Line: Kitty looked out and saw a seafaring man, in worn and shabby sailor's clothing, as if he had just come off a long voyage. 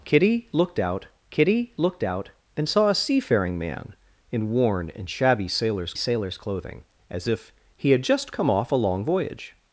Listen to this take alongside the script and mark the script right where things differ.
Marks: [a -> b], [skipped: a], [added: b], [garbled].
Kitty looked out [added: kitty looked out] and saw a seafaring man, in worn and shabby sailor's [added: sailor's] clothing, as if he had just come off a long voyage.